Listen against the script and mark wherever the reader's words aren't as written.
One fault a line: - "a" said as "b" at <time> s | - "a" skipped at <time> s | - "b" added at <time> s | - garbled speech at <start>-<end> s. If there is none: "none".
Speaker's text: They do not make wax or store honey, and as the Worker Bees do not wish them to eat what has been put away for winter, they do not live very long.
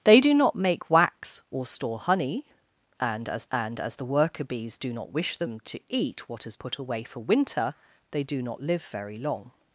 - "and as" added at 3.5 s
- "been" skipped at 6.6 s